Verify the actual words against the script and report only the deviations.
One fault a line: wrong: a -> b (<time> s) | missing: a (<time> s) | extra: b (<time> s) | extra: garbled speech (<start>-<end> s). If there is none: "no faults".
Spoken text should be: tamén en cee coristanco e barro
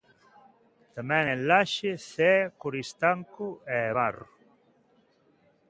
extra: laxe (1.5 s)